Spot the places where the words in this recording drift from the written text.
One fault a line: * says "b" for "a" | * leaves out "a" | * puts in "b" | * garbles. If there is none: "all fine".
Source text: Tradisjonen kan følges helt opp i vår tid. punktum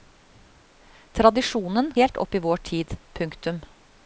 * leaves out "kan følges"